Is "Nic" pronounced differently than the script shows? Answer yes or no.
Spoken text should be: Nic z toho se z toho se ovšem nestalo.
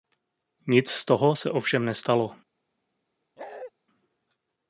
no